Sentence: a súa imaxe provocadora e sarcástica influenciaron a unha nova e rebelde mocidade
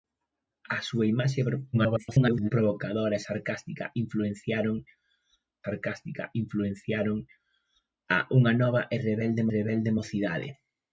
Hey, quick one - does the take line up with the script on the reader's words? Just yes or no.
no